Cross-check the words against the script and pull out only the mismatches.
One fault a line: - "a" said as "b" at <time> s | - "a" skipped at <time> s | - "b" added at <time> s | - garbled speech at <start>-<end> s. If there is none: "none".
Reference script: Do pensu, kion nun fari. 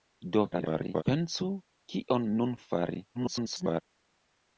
- garbled speech at 0.5-1.0 s
- garbled speech at 3.1-3.8 s